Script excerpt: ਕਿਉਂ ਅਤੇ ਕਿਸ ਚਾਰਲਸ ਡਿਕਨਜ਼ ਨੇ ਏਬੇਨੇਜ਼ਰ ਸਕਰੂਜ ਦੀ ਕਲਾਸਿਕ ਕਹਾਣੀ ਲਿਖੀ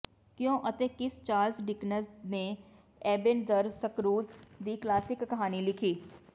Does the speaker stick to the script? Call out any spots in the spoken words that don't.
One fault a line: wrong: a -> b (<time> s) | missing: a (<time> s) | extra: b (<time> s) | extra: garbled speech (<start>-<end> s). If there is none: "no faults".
no faults